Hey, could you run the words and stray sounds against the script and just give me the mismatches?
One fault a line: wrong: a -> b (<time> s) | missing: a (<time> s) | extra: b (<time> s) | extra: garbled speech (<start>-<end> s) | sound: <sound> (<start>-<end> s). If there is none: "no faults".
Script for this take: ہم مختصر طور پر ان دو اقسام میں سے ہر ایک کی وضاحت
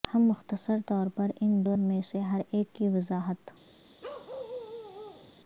missing: اقسام (1.7 s)
sound: bark (4.0-5.3 s)